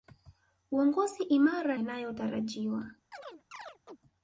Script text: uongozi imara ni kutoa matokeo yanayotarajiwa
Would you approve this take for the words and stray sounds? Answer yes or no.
no